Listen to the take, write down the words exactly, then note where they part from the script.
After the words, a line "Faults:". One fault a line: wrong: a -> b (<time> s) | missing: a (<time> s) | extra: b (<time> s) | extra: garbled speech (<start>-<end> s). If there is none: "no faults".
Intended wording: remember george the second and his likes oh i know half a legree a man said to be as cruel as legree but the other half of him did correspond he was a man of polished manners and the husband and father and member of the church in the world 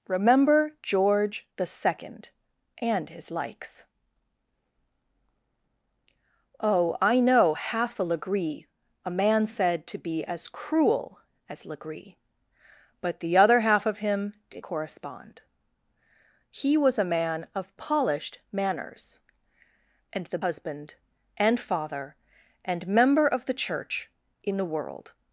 remember george the second and his likes oh i know half a legree a man said to be as cruel as legree but the other half of him did correspond he was a man of polished manners and the husband and father and member of the church in the world
Faults:
no faults